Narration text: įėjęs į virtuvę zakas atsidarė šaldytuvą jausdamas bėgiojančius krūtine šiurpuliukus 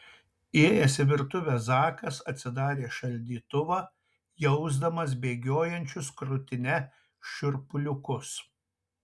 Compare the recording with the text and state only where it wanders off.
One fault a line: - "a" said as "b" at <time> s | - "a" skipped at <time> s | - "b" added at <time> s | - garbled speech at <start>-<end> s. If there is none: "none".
none